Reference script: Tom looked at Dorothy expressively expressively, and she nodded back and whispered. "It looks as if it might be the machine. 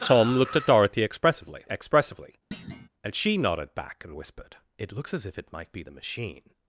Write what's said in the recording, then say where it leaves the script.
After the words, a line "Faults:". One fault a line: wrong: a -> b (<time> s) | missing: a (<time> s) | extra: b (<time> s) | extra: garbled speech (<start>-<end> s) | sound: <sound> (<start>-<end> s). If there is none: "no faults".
Tom looked at Dorothy expressively expressively, and she nodded back and whispered. "It looks as if it might be the machine.
Faults:
sound: thud (2.5-2.9 s)